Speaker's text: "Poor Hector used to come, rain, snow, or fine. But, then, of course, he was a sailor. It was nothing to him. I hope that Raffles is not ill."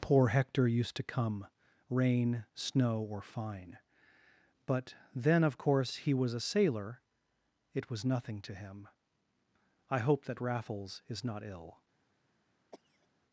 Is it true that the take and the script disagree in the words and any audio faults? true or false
true